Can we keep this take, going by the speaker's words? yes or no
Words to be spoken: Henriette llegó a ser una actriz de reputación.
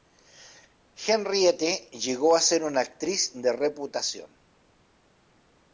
yes